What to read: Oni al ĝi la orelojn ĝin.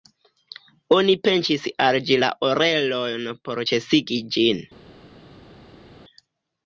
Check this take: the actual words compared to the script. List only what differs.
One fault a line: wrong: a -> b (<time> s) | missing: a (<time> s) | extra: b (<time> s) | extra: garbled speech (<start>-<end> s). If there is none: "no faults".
extra: pinĉis (1.2 s)
extra: por ĉesigi (3.5 s)